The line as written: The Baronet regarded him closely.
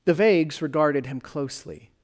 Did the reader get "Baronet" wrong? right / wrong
wrong